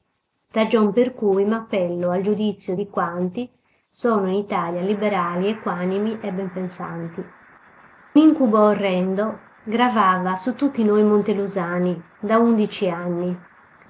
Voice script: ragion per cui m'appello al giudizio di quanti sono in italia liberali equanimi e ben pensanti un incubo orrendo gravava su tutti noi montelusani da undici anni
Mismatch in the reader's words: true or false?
true